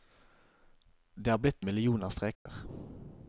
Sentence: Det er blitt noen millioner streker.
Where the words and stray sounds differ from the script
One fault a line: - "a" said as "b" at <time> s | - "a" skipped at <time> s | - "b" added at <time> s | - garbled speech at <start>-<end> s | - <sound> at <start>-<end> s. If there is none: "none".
- "noen" skipped at 1.6 s
- dropout at 2.3-2.5 s